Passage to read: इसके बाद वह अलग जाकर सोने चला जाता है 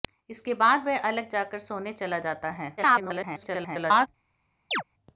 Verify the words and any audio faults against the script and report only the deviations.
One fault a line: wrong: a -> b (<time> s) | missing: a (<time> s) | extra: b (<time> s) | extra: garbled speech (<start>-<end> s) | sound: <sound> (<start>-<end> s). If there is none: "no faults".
extra: garbled speech (2.8-4.1 s)
sound: chirp (4.7-4.8 s)